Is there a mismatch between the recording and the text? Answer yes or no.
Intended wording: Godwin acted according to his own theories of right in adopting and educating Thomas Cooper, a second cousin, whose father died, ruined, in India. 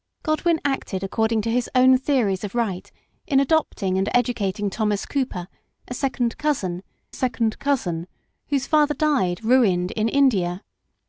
yes